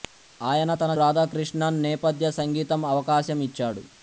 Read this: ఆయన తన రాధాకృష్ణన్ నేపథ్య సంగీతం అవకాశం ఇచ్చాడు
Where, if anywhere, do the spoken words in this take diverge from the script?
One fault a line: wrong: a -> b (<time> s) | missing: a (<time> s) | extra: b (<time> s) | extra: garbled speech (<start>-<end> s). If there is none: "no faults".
no faults